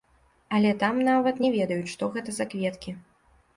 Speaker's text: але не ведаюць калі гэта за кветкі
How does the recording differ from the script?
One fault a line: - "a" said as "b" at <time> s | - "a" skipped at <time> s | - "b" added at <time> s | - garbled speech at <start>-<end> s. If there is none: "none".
- "там нават" added at 0.8 s
- "калі" said as "што" at 2.0 s